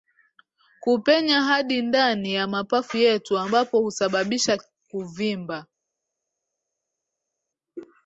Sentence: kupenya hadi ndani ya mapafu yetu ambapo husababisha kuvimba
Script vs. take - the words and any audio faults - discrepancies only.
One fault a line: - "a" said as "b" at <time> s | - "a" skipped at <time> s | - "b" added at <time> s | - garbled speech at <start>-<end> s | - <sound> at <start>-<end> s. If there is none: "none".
none